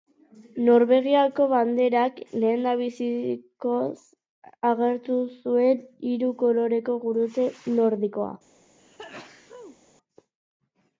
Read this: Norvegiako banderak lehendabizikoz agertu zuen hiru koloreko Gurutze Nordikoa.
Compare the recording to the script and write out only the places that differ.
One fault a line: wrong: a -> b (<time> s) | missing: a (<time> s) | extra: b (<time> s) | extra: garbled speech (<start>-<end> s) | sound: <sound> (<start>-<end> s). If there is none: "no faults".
sound: sneeze (8.8-9.8 s)